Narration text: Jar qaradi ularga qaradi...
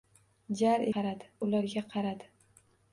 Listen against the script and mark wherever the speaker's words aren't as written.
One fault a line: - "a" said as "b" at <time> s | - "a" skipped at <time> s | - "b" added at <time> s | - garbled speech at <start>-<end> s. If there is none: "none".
none